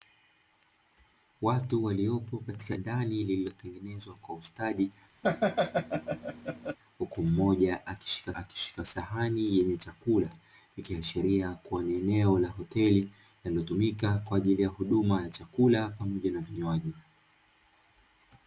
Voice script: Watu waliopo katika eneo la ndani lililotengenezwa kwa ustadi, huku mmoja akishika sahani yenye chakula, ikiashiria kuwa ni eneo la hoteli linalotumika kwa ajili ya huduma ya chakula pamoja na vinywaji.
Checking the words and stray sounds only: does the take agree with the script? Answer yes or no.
no